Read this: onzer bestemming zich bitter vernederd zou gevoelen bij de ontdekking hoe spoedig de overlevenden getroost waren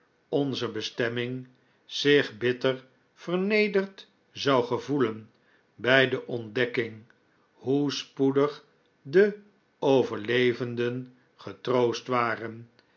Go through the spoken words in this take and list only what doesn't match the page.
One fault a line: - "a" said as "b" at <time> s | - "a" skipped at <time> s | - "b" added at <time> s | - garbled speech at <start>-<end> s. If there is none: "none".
none